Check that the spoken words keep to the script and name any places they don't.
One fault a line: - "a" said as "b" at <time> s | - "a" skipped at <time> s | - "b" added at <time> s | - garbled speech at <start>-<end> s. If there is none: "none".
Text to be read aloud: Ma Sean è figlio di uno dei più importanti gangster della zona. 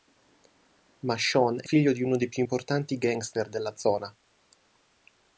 none